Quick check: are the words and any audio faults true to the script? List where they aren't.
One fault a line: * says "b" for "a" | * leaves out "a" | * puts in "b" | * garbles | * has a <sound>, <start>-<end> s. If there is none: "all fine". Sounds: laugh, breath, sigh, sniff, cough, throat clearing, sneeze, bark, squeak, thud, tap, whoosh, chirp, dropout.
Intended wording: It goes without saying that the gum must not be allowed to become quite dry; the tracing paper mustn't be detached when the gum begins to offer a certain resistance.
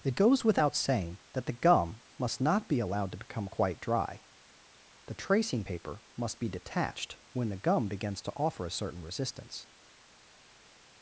* says "must" for "mustn't"